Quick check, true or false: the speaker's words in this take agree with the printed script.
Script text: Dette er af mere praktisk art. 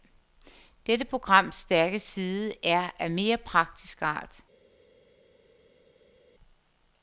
false